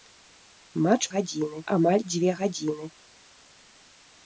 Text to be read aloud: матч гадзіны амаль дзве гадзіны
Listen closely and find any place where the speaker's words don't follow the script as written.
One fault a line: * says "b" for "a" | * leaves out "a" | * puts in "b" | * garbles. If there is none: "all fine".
all fine